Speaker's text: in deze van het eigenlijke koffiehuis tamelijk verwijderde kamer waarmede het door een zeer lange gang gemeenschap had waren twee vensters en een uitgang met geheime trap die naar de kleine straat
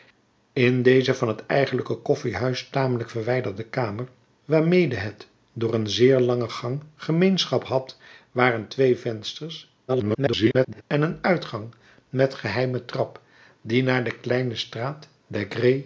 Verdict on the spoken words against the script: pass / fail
fail